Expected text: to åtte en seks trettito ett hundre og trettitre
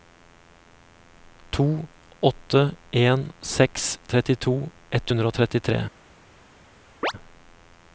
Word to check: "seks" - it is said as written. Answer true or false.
true